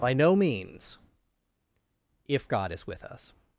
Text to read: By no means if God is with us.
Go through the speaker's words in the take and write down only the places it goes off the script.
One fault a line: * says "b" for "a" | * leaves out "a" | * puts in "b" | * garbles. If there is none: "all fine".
all fine